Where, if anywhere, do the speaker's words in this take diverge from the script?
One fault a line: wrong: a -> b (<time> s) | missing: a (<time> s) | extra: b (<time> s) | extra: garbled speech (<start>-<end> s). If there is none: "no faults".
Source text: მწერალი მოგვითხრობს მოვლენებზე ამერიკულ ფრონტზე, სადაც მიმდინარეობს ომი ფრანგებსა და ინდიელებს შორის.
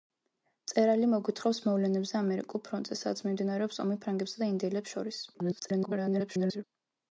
extra: garbled speech (5.3-6.6 s)